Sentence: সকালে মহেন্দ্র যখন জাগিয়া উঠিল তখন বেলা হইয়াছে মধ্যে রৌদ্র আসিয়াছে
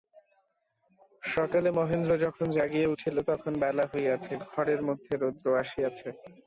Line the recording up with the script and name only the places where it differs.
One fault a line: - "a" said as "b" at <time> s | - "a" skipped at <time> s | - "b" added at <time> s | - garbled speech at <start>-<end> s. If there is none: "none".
- "ঘরের" added at 4.5 s